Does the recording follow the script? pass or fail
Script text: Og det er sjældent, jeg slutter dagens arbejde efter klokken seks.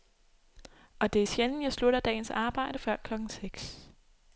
fail